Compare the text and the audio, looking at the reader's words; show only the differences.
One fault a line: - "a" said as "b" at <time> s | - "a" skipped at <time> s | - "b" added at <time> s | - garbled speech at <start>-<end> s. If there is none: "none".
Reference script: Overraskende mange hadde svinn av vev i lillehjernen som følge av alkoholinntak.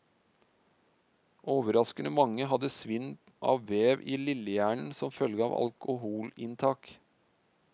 none